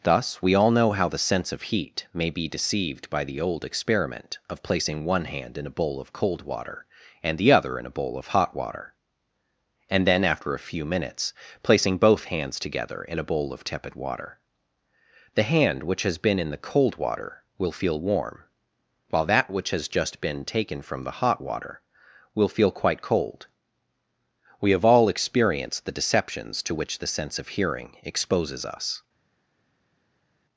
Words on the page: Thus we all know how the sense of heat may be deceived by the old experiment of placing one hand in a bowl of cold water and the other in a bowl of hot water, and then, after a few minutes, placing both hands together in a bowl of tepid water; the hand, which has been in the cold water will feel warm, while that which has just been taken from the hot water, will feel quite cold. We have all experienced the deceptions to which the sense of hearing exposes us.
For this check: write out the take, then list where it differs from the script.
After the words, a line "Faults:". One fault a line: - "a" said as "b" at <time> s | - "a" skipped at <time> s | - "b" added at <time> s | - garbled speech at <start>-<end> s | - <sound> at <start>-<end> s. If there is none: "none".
Thus we all know how the sense of heat may be deceived by the old experiment of placing one hand in a bowl of cold water and the other in a bowl of hot water, and then, after a few minutes, placing both hands together in a bowl of tepid water; the hand, which has been in the cold water will feel warm, while that which has just been taken from the hot water, will feel quite cold. We have all experienced the deceptions to which the sense of hearing exposes us.
Faults:
none